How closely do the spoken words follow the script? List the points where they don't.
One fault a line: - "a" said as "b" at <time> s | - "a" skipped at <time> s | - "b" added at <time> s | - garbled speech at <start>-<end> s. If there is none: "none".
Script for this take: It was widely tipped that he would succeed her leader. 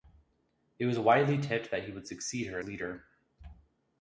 none